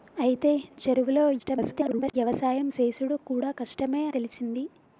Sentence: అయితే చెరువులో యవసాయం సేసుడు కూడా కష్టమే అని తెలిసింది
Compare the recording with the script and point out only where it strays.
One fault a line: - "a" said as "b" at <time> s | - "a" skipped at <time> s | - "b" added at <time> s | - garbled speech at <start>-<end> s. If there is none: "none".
- garbled speech at 1.4-2.1 s
- "అని" skipped at 4.0 s